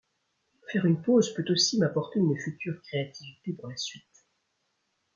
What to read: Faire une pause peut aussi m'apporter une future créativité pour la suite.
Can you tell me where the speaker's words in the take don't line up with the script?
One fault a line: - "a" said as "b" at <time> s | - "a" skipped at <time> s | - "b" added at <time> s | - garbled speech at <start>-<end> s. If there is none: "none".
none